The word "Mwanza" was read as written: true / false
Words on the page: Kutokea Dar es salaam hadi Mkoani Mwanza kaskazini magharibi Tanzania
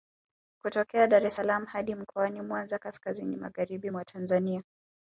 true